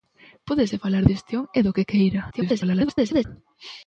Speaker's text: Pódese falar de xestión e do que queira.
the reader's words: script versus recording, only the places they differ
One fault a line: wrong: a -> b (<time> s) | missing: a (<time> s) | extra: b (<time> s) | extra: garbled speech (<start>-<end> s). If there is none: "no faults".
missing: de (1.0 s)
extra: garbled speech (2.3-3.2 s)